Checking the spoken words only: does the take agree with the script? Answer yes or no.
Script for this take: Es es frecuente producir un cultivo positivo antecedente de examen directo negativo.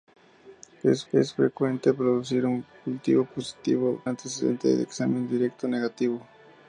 yes